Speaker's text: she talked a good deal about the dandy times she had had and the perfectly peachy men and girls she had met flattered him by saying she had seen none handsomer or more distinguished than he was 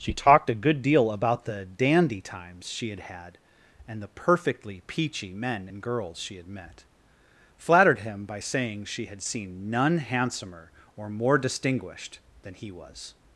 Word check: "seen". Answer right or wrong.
right